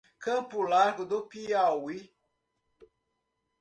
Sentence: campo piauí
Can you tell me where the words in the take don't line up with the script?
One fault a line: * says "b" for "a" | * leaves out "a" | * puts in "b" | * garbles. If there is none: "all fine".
* puts in "largo do"